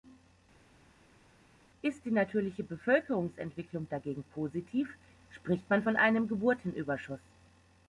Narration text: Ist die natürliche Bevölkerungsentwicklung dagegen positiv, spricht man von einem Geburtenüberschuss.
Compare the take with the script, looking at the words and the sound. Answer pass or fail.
pass